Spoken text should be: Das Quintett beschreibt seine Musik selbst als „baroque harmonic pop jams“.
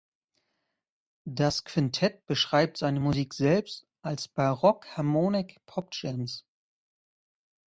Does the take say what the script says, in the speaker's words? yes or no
yes